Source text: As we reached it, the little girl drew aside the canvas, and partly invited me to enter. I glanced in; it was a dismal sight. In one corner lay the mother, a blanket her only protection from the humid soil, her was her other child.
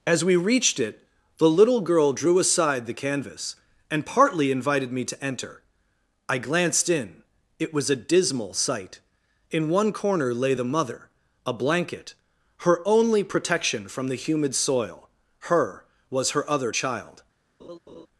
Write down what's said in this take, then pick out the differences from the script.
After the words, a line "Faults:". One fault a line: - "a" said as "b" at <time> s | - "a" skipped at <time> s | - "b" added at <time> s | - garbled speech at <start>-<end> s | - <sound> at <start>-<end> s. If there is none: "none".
As we reached it, the little girl drew aside the canvas, and partly invited me to enter. I glanced in; it was a dismal sight. In one corner lay the mother, a blanket her only protection from the humid soil, her was her other child.
Faults:
- laugh at 17.6-18.1 s